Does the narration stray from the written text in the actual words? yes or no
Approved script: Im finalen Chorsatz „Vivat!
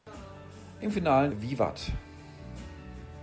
yes